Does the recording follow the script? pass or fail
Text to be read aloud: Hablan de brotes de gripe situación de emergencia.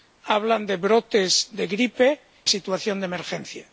pass